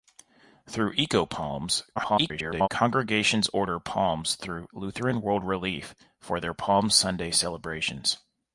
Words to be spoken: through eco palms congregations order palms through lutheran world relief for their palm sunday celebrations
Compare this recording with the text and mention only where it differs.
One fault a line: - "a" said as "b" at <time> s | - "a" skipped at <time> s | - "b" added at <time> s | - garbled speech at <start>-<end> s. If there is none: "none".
- garbled speech at 2.0-2.7 s